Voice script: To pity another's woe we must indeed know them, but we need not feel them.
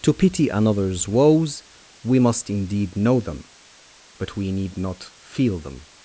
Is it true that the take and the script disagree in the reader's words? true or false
true